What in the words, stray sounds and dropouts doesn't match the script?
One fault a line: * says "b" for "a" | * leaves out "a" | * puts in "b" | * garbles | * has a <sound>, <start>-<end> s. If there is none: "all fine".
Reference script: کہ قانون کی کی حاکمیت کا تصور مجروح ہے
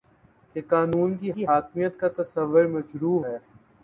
all fine